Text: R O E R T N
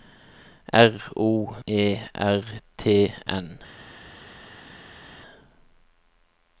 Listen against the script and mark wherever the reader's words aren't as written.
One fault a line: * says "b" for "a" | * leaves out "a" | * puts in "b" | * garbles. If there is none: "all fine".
all fine